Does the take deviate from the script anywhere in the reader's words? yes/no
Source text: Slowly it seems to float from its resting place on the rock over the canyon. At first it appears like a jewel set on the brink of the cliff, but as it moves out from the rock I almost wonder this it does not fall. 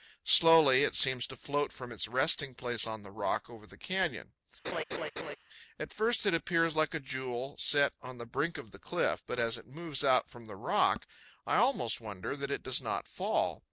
yes